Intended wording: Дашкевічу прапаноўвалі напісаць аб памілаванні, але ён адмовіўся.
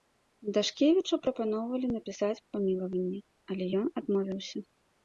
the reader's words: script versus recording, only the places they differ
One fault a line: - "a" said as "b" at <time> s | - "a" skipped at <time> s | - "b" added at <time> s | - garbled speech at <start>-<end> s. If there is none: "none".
none